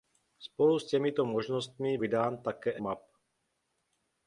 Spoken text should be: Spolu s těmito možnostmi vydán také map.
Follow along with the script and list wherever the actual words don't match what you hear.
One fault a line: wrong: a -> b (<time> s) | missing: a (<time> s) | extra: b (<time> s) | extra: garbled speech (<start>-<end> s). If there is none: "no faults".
no faults